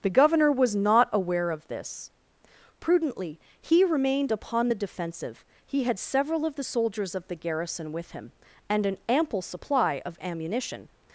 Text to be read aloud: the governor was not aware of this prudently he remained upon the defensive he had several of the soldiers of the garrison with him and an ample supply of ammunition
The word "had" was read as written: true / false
true